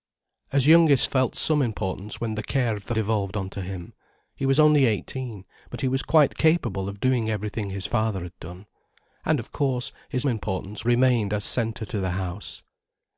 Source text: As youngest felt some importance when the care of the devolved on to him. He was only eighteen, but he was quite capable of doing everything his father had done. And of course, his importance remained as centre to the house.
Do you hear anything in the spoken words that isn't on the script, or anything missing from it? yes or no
no